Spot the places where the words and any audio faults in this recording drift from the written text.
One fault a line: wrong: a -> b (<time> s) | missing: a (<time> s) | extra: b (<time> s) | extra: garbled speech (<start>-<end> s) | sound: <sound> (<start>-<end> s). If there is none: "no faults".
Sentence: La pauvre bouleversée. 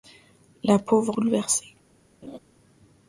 sound: laugh (2.2-2.4 s)